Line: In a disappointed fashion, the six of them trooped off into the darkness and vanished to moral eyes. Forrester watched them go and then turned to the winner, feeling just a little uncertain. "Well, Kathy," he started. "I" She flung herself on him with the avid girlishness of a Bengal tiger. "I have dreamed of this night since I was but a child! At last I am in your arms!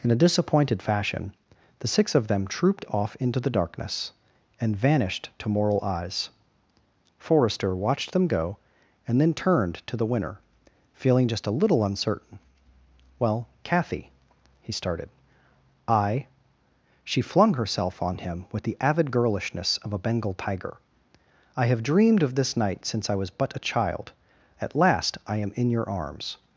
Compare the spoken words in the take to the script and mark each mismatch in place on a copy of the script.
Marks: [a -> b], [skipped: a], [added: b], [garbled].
In a disappointed fashion, the six of them trooped off into the darkness and vanished to moral eyes. Forrester watched them go and then turned to the winner, feeling just a little uncertain. "Well, Kathy," he started. "I" She flung herself on him with the avid girlishness of a Bengal tiger. "I have dreamed of this night since I was but a child! At last I am in your arms!